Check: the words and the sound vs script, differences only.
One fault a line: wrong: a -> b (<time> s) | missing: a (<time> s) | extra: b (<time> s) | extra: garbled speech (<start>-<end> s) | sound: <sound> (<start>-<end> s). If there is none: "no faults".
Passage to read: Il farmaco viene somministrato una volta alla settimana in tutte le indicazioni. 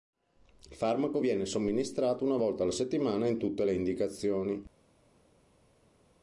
no faults